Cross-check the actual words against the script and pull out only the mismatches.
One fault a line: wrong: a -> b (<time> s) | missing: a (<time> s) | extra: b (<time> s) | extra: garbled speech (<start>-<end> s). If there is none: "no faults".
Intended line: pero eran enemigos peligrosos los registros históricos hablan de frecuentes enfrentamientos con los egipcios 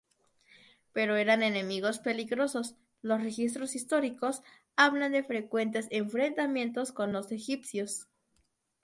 no faults